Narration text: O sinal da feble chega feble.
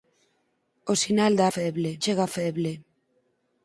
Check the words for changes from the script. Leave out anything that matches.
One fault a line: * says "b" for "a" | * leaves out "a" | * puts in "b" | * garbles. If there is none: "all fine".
all fine